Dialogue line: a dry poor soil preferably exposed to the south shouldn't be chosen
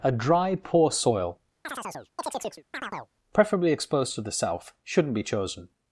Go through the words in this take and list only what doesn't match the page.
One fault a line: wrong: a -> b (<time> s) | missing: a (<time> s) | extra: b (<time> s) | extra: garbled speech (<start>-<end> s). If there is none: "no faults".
no faults